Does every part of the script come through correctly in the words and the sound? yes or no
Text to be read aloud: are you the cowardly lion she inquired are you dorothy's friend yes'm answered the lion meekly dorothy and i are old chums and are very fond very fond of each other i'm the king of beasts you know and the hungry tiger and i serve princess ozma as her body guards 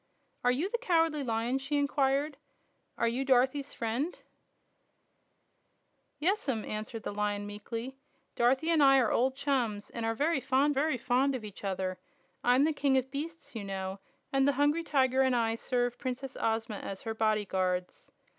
yes